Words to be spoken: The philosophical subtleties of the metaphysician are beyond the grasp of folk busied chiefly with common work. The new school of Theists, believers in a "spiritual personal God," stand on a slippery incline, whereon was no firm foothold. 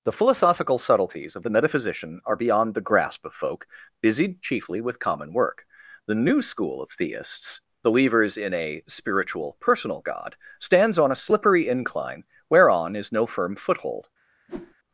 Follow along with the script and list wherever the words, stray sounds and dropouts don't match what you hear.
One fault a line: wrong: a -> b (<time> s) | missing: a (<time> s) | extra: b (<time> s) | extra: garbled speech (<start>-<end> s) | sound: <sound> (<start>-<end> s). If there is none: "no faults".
wrong: stand -> stands (10.6 s)
wrong: was -> is (12.9 s)
sound: whoosh (14.5-14.7 s)